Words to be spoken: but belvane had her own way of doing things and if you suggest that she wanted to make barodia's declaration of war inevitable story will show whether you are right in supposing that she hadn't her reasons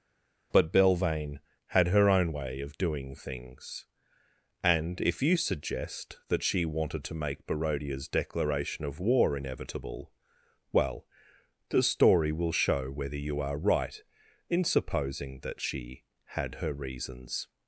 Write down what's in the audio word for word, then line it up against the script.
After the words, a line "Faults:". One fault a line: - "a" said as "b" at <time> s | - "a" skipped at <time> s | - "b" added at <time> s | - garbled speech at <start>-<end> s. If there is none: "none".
but belvane had her own way of doing things and if you suggest that she wanted to make barodia's declaration of war inevitable well the story will show whether you are right in supposing that she had her reasons
Faults:
- "well the" added at 10.7 s
- "hadn't" said as "had" at 16.2 s